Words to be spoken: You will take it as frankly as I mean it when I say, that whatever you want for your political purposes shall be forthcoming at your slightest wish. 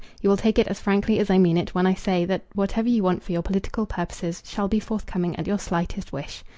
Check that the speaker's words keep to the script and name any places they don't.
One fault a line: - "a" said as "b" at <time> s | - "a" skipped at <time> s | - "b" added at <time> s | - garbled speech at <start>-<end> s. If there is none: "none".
none